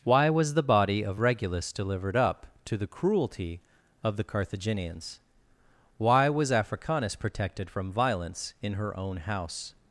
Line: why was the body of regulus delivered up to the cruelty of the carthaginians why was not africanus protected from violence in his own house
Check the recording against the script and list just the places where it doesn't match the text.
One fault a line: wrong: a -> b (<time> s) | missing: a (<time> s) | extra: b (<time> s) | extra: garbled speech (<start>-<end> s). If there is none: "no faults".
missing: not (6.5 s)
wrong: his -> her (8.7 s)